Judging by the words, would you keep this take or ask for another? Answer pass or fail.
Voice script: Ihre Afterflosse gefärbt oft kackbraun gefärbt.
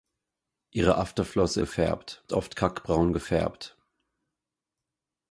pass